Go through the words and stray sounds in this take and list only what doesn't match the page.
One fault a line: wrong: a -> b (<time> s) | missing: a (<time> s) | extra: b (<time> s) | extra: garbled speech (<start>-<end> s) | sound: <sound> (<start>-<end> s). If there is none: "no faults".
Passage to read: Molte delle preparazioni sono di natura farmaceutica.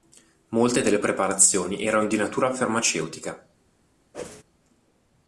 wrong: sono -> erano (1.9 s)
sound: whoosh (4.1-4.4 s)